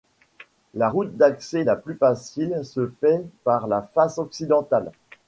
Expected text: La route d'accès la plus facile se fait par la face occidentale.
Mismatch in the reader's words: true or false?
false